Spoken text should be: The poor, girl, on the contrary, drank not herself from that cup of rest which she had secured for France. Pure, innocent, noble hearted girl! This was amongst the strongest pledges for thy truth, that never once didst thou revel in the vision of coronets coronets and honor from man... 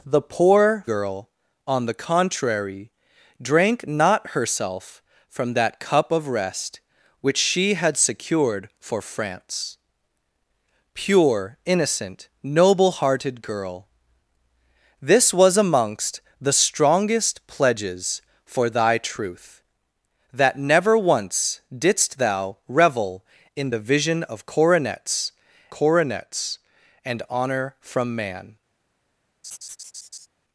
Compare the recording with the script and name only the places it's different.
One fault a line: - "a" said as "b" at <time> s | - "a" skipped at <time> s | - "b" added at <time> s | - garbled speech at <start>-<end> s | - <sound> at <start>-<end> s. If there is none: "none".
- laugh at 29.4-30.3 s